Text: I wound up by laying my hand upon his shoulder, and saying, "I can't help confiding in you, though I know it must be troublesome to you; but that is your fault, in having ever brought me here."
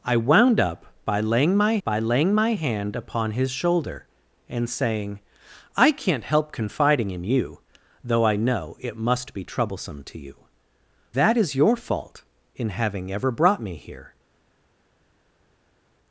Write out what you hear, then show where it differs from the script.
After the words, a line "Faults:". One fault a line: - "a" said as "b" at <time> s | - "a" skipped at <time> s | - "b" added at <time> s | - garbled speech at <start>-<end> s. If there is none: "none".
I wound up by laying my by laying my hand upon his shoulder, and saying, "I can't help confiding in you, though I know it must be troublesome to you; that is your fault, in having ever brought me here."
Faults:
- "by laying my" added at 1.8 s
- "but" skipped at 10.3 s